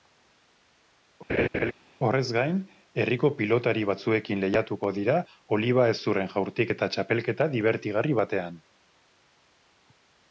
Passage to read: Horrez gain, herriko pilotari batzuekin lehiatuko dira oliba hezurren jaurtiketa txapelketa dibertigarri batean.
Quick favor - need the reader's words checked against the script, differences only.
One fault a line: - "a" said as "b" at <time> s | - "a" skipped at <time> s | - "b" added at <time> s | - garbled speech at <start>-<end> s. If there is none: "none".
none